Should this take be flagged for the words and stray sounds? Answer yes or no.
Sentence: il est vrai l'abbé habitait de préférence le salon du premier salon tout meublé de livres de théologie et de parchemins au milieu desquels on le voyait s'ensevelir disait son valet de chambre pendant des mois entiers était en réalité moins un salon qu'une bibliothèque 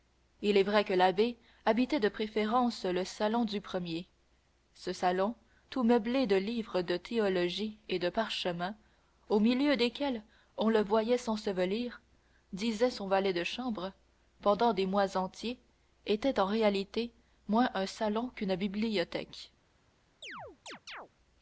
yes